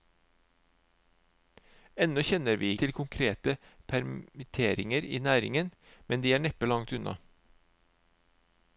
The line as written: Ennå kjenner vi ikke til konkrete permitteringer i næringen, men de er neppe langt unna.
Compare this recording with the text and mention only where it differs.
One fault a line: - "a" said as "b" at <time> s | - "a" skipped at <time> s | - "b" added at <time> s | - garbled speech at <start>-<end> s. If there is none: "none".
- "ikke" skipped at 2.7 s